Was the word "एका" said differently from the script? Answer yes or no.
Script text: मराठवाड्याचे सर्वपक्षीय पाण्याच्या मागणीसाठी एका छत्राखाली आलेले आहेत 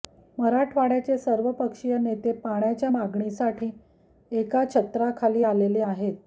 no